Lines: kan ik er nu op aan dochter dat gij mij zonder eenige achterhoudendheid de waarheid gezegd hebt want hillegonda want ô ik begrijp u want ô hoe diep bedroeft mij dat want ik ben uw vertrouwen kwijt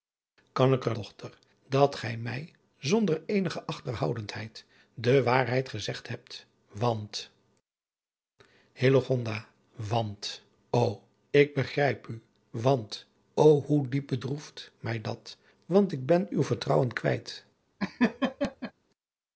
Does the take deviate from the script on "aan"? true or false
true